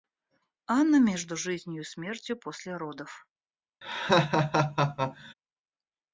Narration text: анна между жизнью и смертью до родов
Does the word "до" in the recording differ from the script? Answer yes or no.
yes